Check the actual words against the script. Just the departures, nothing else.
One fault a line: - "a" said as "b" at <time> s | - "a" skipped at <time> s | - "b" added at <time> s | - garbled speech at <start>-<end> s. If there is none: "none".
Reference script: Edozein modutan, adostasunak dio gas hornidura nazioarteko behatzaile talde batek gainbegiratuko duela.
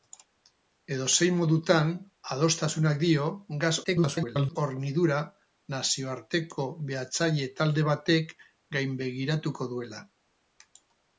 - garbled speech at 3.8-4.6 s